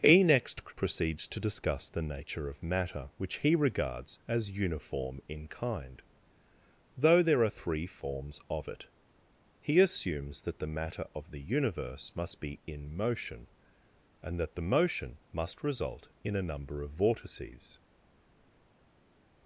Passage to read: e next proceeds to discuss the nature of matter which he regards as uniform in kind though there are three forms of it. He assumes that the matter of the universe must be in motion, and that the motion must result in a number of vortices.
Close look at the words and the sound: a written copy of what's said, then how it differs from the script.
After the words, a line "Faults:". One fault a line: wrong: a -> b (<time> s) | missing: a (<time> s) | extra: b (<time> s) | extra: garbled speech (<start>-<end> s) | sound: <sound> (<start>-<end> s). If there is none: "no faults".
e next proceeds to discuss the nature of matter which he regards as uniform in kind though there are three forms of it. He assumes that the matter of the universe must be in motion, and that the motion must result in a number of vortices.
Faults:
no faults